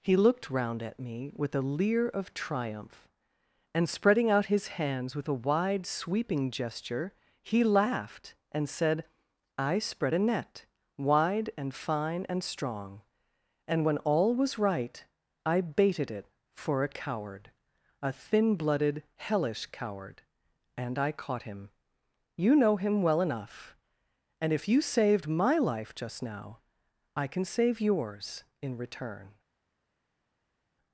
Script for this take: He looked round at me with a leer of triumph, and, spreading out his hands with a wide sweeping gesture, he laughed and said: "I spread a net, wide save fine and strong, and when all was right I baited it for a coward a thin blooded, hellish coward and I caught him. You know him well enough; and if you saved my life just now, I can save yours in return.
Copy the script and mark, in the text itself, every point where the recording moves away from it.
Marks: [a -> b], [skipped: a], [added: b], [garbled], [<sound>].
He looked round at me with a leer of triumph, and, spreading out his hands with a wide sweeping gesture, he laughed and said: "I spread a net, wide [save -> and] fine and strong, and when all was right I baited it for a coward a thin blooded, hellish coward and I caught him. You know him well enough; and if you saved my life just now, I can save yours in return.